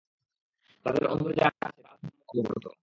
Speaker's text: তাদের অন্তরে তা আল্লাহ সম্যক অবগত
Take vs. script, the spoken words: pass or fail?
fail